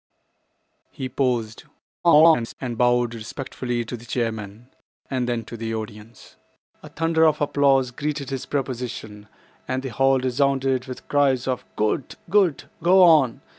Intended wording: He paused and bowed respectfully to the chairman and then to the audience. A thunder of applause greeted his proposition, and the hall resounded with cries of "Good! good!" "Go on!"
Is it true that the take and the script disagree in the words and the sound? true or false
true